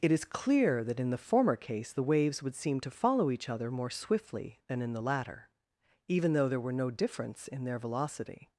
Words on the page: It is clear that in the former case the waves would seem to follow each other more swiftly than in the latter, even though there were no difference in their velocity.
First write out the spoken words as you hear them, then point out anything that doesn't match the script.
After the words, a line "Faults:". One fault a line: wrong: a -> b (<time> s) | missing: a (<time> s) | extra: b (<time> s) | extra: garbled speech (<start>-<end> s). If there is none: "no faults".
It is clear that in the former case the waves would seem to follow each other more swiftly than in the latter, even though there were no difference in their velocity.
Faults:
no faults